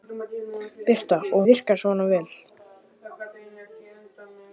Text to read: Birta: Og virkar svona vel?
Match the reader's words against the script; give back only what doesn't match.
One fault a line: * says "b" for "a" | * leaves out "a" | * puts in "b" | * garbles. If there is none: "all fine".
all fine